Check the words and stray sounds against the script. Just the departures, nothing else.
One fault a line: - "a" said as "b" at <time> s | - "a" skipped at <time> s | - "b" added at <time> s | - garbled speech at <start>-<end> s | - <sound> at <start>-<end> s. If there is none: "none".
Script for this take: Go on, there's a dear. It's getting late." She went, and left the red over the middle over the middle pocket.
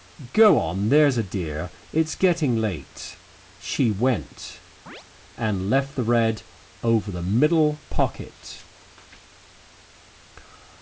- chirp at 4.9-5.1 s
- "over the middle" skipped at 7.8 s